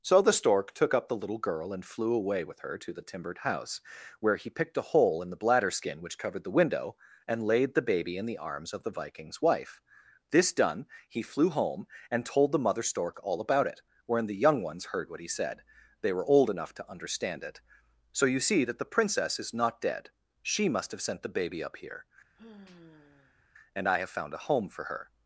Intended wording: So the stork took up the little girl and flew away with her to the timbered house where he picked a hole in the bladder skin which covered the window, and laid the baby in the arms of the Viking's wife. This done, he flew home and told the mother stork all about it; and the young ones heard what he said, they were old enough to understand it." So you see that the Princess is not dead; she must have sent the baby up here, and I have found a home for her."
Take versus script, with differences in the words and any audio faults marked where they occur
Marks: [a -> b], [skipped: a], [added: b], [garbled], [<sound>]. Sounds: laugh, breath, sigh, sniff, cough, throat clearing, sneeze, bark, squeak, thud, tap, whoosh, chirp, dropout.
So the stork took up the little girl and flew away with her to the timbered house where he picked a hole in the bladder skin which covered the window, and laid the baby in the arms of the Viking's wife. This done, he flew home and told the mother stork all about it; [and -> wherein] the young ones heard what he said, they were old enough to understand it." So you see that the Princess is not dead; she must have sent the baby up here, [sigh] and I have found a home for her."